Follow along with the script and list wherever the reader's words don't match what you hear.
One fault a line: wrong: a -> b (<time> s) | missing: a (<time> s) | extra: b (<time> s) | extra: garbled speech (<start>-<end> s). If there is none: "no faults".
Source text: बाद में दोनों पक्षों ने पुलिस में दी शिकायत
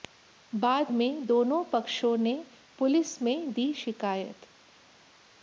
no faults